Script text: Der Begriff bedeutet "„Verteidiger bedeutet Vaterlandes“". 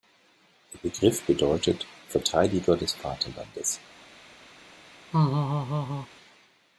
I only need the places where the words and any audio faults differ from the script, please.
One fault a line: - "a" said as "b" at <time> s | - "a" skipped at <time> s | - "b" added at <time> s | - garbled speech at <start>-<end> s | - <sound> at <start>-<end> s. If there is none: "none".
- "bedeutet" said as "des" at 2.8 s
- laugh at 5.1-6.1 s